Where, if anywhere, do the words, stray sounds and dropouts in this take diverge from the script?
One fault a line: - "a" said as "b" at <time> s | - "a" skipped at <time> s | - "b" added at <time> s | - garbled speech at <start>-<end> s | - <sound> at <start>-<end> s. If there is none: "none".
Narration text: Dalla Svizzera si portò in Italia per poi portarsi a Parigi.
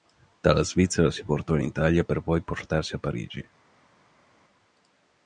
none